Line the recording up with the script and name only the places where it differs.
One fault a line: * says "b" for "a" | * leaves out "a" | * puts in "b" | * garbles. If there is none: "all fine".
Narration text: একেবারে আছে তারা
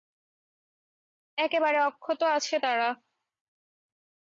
* puts in "অক্ষত"